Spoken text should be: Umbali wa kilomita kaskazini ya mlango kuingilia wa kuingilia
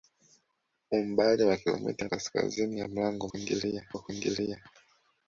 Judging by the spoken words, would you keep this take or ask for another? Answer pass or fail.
pass